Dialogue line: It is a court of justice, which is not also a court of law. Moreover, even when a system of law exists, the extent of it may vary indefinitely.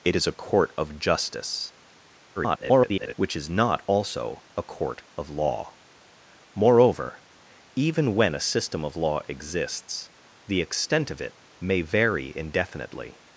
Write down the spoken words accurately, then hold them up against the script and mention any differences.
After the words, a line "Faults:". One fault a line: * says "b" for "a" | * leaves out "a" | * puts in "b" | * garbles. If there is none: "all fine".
It is a court of justice, [garbled] which is not also a court of law. Moreover, even when a system of law exists, the extent of it may vary indefinitely.
Faults:
* garbles